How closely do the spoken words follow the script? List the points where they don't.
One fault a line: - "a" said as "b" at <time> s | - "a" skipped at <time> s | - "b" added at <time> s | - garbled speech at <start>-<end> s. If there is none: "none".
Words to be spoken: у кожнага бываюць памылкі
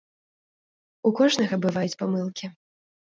none